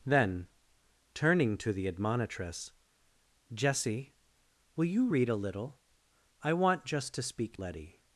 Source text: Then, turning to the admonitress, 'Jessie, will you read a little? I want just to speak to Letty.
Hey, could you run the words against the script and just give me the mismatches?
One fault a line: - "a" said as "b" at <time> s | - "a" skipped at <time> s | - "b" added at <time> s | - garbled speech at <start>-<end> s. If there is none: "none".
- "to" skipped at 7.6 s